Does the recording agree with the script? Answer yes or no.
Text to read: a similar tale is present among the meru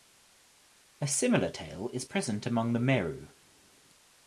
yes